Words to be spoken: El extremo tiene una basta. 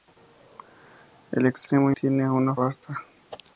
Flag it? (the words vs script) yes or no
no